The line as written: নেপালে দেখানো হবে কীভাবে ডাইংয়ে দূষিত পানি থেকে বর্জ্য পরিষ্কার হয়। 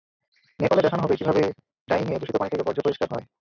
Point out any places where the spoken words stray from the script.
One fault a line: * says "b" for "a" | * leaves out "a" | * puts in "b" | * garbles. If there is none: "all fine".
all fine